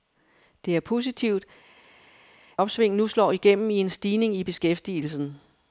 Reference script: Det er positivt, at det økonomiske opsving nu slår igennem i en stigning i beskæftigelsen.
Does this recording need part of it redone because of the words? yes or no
yes